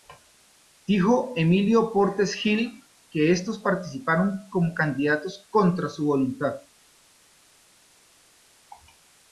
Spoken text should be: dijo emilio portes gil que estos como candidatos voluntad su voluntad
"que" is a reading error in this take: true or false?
false